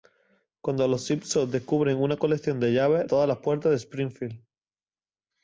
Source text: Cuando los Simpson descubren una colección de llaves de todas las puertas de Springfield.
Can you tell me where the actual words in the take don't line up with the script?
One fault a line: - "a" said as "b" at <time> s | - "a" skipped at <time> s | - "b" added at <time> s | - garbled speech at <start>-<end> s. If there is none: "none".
- "de" skipped at 3.0 s